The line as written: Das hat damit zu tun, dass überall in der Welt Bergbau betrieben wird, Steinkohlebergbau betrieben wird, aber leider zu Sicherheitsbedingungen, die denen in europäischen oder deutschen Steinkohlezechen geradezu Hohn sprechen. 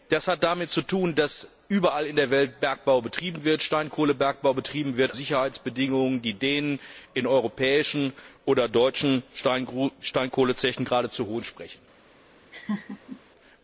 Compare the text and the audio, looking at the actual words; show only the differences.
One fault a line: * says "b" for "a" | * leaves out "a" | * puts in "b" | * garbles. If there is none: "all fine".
* leaves out "aber leider zu"